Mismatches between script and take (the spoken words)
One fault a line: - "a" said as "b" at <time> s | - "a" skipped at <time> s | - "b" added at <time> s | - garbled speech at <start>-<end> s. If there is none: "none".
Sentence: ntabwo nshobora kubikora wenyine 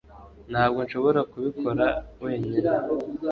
none